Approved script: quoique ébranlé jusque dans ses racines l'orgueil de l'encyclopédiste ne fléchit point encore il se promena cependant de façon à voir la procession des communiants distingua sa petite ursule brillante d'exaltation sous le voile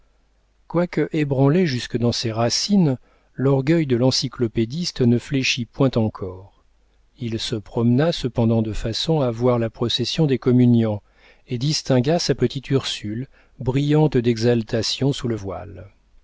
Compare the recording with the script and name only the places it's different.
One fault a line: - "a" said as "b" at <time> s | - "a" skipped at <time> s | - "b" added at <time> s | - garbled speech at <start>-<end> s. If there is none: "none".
- "et" added at 11.5 s